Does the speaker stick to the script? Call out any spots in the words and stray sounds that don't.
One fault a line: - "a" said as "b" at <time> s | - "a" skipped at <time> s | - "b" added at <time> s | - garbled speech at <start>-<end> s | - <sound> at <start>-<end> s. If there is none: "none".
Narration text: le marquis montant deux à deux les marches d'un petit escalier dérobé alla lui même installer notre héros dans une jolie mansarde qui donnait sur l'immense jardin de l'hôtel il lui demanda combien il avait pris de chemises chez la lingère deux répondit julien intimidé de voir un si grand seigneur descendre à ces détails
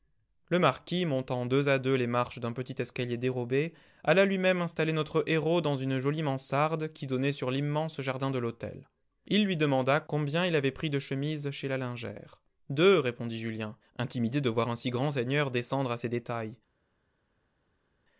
none